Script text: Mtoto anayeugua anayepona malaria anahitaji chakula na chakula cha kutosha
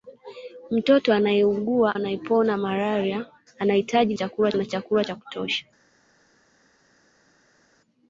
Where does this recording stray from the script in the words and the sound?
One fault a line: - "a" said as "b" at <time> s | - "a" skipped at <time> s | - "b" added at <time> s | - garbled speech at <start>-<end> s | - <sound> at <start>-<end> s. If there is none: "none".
none